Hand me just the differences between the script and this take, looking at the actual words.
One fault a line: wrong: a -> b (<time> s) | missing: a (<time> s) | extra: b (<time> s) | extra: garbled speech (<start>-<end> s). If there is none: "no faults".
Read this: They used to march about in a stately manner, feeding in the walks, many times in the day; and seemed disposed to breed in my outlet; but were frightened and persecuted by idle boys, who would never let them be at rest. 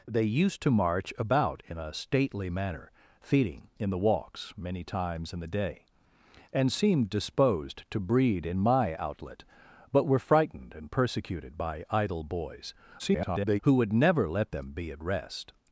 extra: garbled speech (13.0-13.6 s)